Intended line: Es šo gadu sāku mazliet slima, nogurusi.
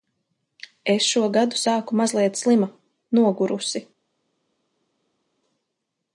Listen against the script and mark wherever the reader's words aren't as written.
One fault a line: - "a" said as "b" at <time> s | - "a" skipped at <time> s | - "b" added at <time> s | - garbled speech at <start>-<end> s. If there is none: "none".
none